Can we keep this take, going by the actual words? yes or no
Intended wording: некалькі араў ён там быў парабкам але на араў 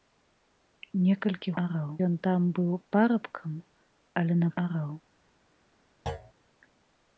yes